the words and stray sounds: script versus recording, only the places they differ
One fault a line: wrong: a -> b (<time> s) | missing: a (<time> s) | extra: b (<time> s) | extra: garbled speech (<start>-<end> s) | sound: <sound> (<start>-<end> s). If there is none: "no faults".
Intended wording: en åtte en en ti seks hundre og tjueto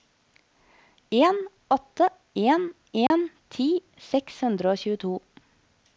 sound: dropout (3.1-3.1 s)